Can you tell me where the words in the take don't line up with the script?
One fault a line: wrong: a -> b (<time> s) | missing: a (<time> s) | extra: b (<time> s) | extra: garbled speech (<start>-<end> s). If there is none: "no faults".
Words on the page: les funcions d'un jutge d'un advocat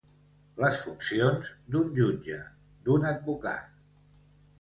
no faults